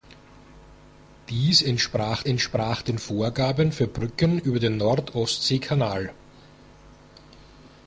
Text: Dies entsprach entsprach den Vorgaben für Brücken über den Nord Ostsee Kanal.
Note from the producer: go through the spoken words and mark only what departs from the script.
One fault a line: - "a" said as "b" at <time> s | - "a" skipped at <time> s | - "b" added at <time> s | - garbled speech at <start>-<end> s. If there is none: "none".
none